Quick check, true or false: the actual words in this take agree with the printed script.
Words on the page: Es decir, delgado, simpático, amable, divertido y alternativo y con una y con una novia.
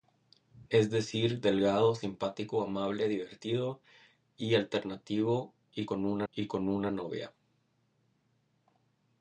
true